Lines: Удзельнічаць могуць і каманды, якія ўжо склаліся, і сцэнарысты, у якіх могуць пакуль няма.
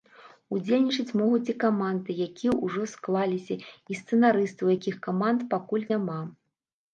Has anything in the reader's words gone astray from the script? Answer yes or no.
yes